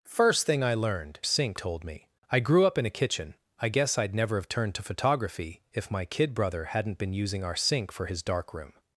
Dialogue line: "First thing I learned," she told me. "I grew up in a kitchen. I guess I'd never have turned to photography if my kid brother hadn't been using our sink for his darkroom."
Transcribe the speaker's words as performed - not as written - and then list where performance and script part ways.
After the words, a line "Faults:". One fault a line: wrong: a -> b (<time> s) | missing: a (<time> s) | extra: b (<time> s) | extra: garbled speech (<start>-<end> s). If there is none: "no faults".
"First thing I learned," sink told me. "I grew up in a kitchen. I guess I'd never have turned to photography if my kid brother hadn't been using our sink for his darkroom."
Faults:
wrong: she -> sink (1.2 s)